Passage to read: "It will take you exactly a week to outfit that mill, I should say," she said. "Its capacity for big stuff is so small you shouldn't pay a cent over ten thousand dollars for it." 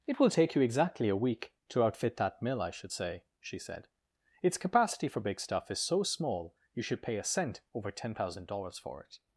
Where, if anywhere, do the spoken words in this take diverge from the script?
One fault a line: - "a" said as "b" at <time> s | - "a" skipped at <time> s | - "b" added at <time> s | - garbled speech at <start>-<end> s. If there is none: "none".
- "shouldn't" said as "should" at 6.8 s